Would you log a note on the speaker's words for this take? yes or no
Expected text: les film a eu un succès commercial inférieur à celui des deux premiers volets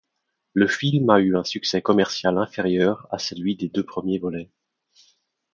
yes